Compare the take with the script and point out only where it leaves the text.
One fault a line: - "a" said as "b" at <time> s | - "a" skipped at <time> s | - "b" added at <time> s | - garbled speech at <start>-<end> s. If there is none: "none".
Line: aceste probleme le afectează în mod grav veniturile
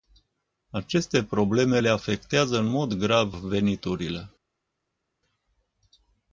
none